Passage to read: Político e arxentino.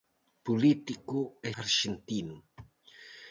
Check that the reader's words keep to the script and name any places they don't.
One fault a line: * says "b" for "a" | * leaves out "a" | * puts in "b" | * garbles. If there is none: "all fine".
all fine